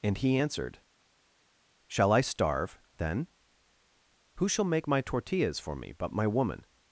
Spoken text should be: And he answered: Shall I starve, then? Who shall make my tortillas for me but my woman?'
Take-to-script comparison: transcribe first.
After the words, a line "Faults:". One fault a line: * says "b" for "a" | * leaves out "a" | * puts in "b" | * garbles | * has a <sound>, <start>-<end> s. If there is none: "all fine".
And he answered: Shall I starve, then? Who shall make my tortillas for me but my woman?'
Faults:
all fine